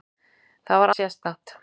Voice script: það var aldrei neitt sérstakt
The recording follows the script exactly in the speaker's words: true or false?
false